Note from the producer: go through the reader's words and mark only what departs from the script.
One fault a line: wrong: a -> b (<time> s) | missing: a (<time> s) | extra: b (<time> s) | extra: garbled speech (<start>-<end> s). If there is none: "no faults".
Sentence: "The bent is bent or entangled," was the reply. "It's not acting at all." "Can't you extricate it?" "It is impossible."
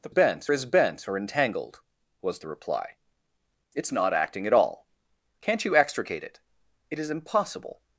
no faults